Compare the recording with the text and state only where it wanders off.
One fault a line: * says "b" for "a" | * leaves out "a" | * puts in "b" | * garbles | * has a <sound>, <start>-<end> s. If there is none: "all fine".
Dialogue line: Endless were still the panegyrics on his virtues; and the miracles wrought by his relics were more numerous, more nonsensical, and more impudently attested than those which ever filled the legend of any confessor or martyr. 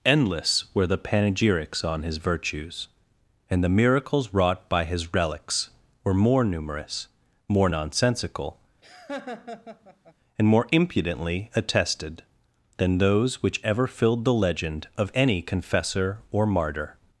* leaves out "still"
* has a laugh, 8.8-10.1 s